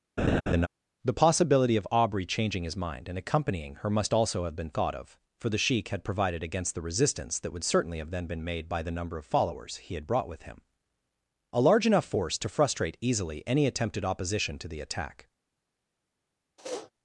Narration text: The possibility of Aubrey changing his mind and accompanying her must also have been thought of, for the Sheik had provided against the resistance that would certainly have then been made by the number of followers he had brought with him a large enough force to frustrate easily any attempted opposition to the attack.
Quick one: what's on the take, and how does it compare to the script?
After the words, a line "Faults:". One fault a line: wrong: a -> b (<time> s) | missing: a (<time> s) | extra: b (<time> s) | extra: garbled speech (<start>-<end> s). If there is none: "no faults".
The possibility of Aubrey changing his mind and accompanying her must also have been thought of, for the Sheik had provided against the resistance that would certainly have then been made by the number of followers he had brought with him a large enough force to frustrate easily any attempted opposition to the attack.
Faults:
no faults